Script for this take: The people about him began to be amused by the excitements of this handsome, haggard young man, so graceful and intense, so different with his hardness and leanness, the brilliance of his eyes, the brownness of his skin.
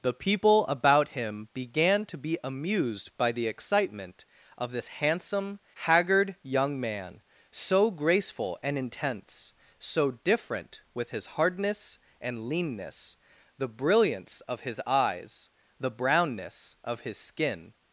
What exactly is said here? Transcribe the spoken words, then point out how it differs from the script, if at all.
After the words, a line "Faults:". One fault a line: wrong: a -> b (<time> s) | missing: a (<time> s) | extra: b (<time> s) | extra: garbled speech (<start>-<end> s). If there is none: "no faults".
The people about him began to be amused by the excitement of this handsome, haggard young man, so graceful and intense, so different with his hardness and leanness, the brilliance of his eyes, the brownness of his skin.
Faults:
wrong: excitements -> excitement (3.5 s)